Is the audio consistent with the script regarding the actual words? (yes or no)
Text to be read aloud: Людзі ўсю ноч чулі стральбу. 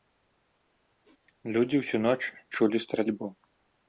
yes